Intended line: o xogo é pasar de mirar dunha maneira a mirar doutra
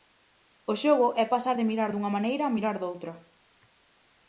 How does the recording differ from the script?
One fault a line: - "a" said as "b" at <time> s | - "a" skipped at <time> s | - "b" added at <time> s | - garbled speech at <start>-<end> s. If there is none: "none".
none